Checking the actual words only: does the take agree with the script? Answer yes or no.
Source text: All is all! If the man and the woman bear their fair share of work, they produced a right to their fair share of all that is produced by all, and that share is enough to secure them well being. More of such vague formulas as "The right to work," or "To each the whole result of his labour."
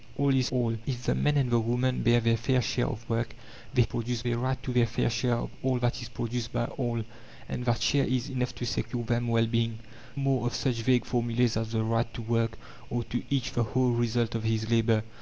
yes